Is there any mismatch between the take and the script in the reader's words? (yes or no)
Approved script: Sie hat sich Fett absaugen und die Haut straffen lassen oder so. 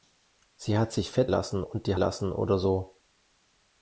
yes